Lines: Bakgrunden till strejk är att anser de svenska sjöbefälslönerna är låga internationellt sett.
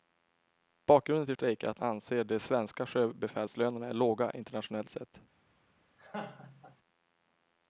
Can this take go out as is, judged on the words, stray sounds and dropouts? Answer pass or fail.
fail